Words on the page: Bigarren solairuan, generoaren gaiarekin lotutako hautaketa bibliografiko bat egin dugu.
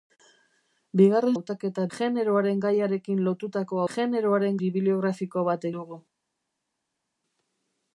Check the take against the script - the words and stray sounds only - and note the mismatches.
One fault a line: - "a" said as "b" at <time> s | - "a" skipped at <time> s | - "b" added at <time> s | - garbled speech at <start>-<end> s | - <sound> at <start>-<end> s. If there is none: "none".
- "solairuan" said as "hautaketa" at 1.3 s
- "hautaketa" said as "generoaren" at 3.9 s
- "egin" skipped at 5.7 s